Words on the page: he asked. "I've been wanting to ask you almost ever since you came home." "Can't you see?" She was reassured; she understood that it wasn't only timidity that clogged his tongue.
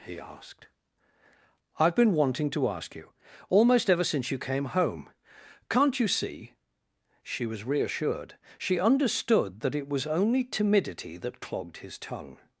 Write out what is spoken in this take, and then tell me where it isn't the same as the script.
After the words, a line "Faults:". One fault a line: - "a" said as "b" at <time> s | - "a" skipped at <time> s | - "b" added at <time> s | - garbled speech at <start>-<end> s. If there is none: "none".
he asked. "I've been wanting to ask you almost ever since you came home." "Can't you see?" She was reassured; she understood that it was only timidity that clogged his tongue.
Faults:
- "wasn't" said as "was" at 9.9 s